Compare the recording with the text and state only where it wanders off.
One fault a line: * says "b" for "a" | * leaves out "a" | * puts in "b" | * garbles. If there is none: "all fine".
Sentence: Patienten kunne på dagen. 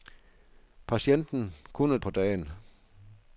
all fine